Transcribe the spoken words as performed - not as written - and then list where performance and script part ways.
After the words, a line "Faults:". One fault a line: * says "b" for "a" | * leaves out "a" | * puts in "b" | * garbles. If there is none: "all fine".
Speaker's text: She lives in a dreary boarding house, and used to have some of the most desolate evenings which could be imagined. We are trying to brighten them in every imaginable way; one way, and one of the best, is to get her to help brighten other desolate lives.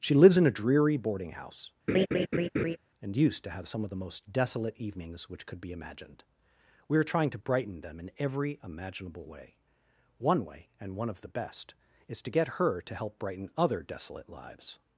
She lives in a dreary boarding house, and used to have some of the most desolate evenings which could be imagined. We are trying to brighten them in every imaginable way; one way, and one of the best, is to get her to help brighten other desolate lives.
Faults:
all fine